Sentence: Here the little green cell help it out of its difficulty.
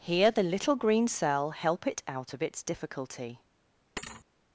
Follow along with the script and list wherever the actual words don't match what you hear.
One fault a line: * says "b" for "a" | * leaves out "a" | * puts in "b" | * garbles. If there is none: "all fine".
all fine